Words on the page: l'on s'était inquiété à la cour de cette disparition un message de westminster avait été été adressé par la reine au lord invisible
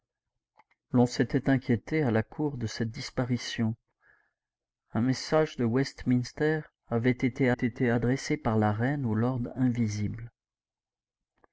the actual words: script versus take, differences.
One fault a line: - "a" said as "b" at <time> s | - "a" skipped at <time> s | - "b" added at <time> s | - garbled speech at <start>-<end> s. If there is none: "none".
none